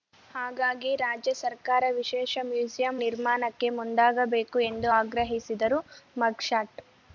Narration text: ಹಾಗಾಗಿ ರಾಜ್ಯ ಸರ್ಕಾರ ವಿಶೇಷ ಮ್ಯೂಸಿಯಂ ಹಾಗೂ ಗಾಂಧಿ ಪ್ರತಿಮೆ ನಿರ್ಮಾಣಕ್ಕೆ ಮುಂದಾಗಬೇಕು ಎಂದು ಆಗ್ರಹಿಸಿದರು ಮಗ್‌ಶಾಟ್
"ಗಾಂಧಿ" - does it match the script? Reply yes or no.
no